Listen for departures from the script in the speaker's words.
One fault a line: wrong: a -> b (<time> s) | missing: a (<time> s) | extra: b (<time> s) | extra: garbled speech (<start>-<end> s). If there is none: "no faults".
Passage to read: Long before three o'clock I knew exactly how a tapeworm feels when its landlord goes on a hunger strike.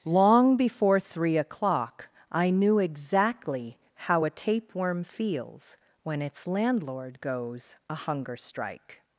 missing: on (7.8 s)